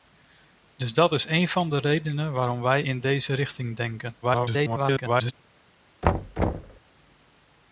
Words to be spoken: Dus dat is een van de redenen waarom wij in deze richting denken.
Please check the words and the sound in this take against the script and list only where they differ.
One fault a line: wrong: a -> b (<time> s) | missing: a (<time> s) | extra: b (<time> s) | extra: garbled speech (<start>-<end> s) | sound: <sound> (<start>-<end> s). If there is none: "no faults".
extra: garbled speech (4.2-5.3 s)
sound: thud (6.0-6.8 s)